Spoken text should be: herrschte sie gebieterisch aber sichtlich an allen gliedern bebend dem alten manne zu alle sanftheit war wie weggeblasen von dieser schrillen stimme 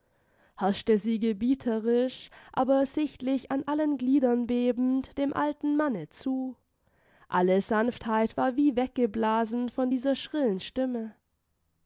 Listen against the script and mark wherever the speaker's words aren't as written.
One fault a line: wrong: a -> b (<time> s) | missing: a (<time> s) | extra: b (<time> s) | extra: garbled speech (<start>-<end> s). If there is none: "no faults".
no faults